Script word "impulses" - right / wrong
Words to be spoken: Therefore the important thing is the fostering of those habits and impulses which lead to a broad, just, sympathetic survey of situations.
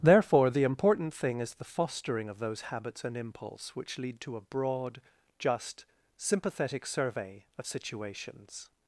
wrong